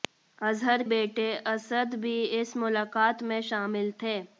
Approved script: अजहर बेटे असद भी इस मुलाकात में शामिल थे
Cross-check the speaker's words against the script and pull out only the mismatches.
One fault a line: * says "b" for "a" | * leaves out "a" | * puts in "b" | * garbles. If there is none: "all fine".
all fine